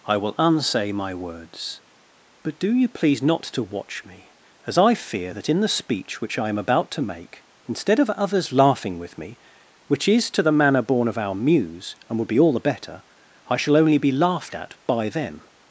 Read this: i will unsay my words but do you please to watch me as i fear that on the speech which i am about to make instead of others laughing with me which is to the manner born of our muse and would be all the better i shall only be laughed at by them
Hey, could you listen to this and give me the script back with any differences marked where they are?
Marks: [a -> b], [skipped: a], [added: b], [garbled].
i will unsay my words but do you please [added: not] to watch me as i fear that [on -> in] the speech which i am about to make instead of others laughing with me which is to the manner born of our muse and would be all the better i shall only be laughed at by them